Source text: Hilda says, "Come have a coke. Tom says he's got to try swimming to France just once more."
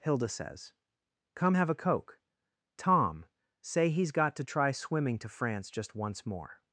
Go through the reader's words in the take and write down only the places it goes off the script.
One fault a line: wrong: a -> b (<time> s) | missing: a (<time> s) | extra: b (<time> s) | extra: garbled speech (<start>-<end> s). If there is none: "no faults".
wrong: says -> say (3.6 s)